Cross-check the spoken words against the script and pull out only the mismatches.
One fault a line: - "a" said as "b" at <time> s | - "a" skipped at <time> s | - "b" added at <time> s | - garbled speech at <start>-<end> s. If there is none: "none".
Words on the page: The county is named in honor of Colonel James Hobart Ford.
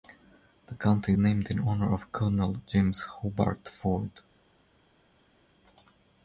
- "is" skipped at 1.1 s